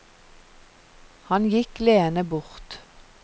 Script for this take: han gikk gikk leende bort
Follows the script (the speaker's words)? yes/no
no